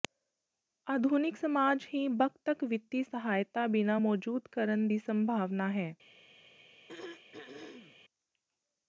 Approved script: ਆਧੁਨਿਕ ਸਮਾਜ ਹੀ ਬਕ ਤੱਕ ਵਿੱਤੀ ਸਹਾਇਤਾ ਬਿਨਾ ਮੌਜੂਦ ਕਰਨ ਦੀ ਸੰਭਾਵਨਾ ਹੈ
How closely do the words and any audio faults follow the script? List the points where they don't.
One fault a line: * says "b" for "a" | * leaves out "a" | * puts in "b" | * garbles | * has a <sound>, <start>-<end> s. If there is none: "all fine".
* has a throat clearing, 6.9-8.0 s